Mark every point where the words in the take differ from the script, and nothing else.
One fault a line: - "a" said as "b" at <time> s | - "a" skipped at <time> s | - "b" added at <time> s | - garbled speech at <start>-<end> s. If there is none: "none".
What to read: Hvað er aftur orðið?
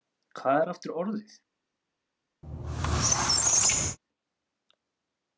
none